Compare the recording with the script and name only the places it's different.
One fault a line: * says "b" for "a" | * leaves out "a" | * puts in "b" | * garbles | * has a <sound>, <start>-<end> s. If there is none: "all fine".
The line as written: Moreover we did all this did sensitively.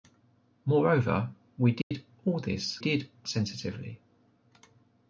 * has a dropout, 1.8-1.9 s